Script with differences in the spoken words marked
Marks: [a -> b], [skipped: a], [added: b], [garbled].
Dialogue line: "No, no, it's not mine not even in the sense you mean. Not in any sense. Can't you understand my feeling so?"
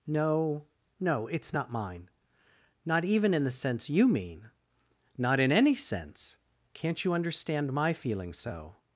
"No, no, it's not mine not even in the sense you mean. Not in any sense. Can't you understand my feeling so?"